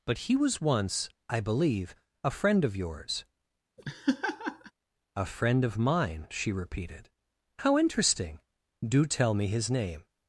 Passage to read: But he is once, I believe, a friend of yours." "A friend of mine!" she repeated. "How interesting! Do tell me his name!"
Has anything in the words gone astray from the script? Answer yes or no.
yes